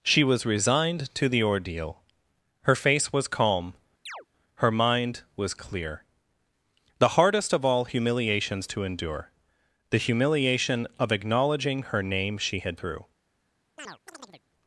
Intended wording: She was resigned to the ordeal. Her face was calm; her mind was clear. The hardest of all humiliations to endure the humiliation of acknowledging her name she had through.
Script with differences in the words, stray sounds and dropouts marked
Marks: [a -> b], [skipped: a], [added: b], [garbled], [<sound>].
She was resigned to the ordeal. Her face was calm; [chirp] her mind was clear. The hardest of all humiliations to endure the humiliation of acknowledging her name she had through. [chirp]